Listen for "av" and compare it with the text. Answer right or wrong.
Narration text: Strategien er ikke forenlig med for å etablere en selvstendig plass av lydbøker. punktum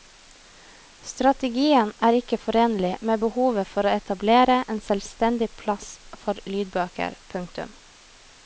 wrong